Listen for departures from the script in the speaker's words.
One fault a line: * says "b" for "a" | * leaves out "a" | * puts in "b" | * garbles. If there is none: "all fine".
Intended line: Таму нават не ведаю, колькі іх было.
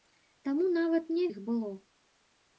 * leaves out "ведаю колькі"